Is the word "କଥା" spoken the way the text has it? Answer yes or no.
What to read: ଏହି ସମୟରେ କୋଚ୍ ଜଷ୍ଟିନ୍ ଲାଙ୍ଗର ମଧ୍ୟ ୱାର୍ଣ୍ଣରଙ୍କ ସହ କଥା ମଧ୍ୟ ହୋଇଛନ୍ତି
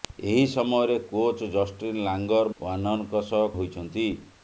no